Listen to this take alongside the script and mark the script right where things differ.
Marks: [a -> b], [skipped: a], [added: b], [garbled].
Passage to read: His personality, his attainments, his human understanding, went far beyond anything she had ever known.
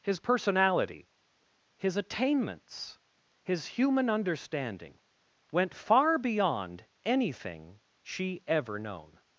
His personality, his attainments, his human understanding, went far beyond anything she [skipped: had] ever known.